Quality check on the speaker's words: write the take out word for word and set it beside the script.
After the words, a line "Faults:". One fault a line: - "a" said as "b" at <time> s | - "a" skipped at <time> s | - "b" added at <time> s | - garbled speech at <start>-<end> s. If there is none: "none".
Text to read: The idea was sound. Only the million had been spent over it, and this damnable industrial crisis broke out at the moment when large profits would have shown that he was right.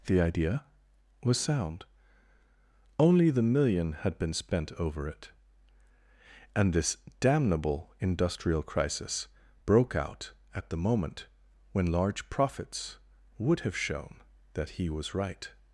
The idea was sound. Only the million had been spent over it, and this damnable industrial crisis broke out at the moment when large profits would have shown that he was right.
Faults:
none